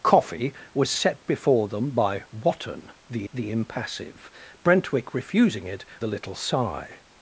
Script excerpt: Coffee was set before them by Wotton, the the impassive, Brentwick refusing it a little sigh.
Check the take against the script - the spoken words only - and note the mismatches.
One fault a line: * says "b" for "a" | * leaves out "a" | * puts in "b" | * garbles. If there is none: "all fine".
all fine